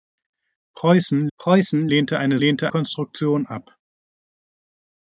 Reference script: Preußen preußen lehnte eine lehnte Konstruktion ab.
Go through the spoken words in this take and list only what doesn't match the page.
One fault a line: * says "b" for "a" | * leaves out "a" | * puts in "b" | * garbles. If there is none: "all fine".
all fine